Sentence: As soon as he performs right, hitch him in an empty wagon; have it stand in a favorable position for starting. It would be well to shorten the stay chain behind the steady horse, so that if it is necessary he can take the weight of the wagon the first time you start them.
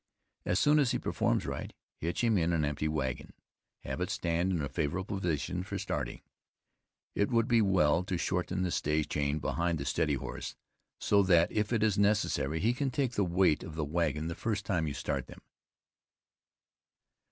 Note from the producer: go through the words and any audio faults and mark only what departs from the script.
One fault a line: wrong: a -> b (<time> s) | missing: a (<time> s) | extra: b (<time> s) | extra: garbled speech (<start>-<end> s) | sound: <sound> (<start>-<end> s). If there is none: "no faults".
no faults